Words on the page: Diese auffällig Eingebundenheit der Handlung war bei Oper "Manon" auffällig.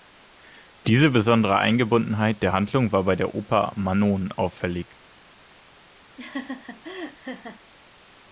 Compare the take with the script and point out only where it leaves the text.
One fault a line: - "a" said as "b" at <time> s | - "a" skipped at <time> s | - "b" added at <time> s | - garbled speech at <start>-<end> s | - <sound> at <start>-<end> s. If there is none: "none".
- "auffällig" said as "besondere" at 1.1 s
- "der" added at 3.2 s
- laugh at 6.2-7.6 s